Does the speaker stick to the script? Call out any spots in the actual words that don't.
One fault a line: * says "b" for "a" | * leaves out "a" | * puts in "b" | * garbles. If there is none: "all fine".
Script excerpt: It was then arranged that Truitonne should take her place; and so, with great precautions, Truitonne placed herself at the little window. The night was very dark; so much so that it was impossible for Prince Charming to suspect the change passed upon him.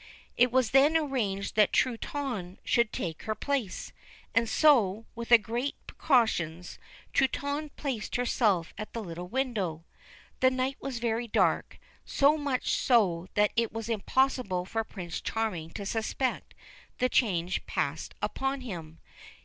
all fine